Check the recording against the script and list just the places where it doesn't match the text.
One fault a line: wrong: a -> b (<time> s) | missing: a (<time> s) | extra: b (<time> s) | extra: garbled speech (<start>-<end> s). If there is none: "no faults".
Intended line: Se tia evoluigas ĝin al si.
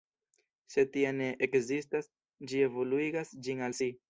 extra: ne ekzistas ĝi (1.2 s)